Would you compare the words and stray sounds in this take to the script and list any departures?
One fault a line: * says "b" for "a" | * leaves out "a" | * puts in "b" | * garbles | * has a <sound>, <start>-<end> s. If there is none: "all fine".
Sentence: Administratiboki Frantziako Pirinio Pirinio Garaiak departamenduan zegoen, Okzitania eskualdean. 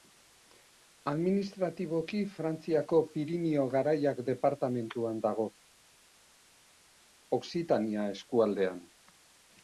* leaves out "Pirinio"
* says "dago" for "zegoen"